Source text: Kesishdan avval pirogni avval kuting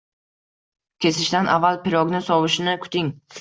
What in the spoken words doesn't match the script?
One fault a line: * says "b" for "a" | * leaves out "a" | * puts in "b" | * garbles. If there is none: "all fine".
* says "sovishini" for "avval"